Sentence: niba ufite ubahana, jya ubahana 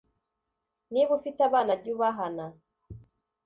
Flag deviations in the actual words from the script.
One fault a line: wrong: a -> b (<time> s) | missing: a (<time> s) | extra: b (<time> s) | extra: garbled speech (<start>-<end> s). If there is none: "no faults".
wrong: ubahana -> abana (1.5 s)